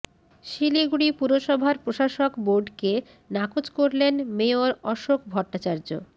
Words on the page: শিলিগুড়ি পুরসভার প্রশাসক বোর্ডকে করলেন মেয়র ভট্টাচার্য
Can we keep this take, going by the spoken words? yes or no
no